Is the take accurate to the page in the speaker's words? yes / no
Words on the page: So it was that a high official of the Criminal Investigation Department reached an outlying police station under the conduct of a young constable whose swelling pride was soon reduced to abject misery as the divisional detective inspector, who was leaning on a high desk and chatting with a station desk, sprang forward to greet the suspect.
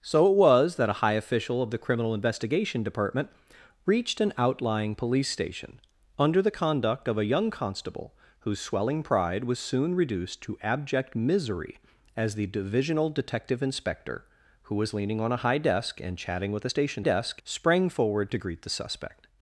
yes